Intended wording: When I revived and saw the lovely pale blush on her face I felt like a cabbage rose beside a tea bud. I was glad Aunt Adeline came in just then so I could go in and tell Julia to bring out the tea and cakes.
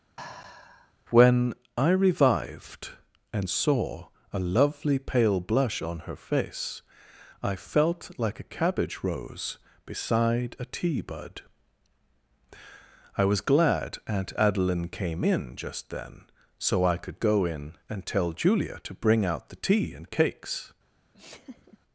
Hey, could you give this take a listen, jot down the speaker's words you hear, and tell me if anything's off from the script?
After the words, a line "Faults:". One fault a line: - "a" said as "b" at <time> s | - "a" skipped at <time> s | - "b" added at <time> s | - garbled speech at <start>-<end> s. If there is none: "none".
When I revived and saw a lovely pale blush on her face I felt like a cabbage rose beside a tea bud. I was glad Aunt Adeline came in just then so I could go in and tell Julia to bring out the tea and cakes.
Faults:
- "the" said as "a" at 4.3 s